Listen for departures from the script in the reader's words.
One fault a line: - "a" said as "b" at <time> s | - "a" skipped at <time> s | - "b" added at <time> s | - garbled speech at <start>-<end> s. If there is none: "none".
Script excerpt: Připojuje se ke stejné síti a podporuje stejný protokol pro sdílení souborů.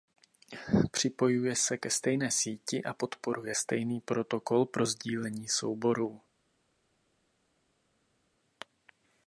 none